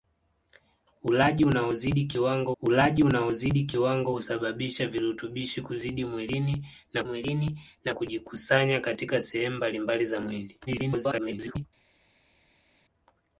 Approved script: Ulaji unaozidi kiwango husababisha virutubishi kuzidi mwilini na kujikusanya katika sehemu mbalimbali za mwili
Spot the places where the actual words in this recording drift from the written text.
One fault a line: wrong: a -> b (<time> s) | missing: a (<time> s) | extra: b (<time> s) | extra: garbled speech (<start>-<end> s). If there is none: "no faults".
extra: ulaji unaozidi kiwango (2.6 s)
extra: mwilini na (7.0 s)
extra: garbled speech (10.7-11.7 s)